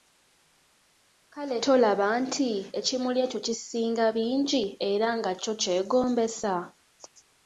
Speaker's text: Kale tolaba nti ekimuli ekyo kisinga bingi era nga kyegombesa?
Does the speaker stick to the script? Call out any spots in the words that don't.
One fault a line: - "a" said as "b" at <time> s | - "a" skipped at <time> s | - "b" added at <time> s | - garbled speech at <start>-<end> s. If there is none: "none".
- "kyo" added at 5.4 s